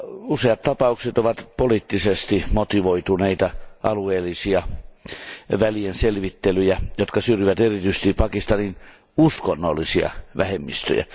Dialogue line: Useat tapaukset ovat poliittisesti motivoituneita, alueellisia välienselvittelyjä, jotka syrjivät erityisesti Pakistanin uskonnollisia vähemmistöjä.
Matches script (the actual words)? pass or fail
pass